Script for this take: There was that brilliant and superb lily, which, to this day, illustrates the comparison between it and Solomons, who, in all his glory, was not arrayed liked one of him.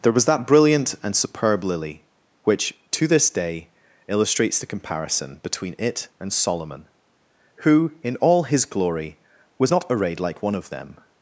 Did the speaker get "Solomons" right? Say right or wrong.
wrong